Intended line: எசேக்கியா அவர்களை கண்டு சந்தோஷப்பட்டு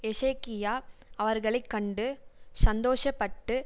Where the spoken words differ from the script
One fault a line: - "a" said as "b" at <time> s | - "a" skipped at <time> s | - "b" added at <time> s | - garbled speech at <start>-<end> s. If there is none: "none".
none